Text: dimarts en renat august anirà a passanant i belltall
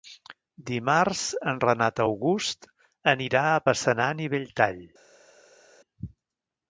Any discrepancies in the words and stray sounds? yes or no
no